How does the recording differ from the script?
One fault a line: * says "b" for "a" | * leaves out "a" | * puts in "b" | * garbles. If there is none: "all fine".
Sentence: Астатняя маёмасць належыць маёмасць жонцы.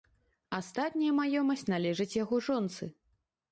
* says "яго" for "маёмасць"